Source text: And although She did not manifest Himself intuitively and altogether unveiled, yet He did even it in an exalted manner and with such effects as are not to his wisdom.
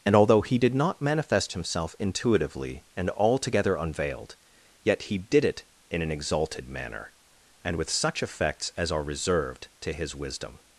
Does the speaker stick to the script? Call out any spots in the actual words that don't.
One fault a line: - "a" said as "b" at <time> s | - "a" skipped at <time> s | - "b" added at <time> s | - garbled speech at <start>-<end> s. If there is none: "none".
- "She" said as "He" at 0.4 s
- "even" skipped at 5.5 s
- "not" said as "reserved" at 9.0 s